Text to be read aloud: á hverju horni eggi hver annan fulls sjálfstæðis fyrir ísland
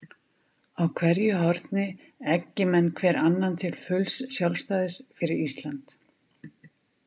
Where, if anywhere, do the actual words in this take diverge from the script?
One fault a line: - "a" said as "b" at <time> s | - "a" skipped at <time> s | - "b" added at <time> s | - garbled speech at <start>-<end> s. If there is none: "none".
- "menn" added at 2.7 s
- "til" added at 3.6 s